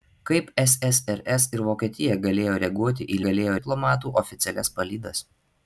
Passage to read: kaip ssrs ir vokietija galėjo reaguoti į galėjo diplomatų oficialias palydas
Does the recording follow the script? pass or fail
pass